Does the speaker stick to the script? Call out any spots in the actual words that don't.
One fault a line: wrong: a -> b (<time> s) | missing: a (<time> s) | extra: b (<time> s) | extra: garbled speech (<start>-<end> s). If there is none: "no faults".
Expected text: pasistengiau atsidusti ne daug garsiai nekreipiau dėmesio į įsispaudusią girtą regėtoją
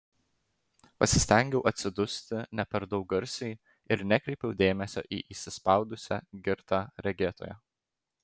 extra: per (2.8 s)
extra: ir (4.0 s)